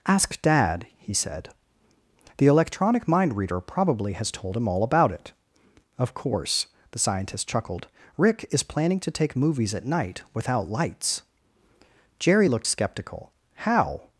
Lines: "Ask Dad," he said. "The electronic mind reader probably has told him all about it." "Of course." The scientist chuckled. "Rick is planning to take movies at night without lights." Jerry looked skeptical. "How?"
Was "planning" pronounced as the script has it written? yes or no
yes